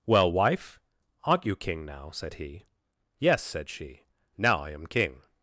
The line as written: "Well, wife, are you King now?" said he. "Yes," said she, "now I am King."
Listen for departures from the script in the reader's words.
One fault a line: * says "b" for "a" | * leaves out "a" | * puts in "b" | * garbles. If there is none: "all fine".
* says "aren't" for "are"